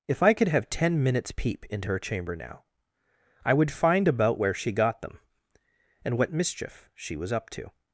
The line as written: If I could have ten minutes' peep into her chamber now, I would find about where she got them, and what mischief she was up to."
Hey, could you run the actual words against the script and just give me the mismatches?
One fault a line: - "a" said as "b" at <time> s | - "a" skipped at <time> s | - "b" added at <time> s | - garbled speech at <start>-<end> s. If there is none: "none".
none